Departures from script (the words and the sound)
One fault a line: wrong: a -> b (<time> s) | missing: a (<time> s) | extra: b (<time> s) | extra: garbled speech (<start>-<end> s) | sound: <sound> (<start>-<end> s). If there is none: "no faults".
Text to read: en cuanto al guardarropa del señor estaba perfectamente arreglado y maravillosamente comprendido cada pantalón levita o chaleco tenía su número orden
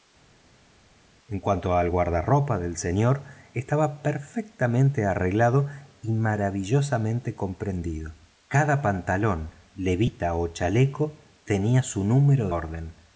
no faults